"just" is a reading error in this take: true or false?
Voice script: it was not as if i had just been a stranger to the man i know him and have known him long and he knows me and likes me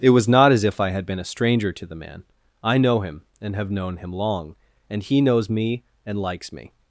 true